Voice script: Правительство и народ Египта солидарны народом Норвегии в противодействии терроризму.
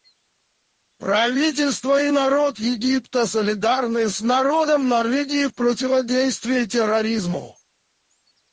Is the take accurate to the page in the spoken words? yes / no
no